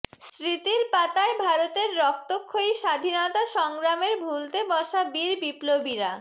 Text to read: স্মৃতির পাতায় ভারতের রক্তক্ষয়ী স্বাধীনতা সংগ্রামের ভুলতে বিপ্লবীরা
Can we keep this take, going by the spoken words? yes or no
no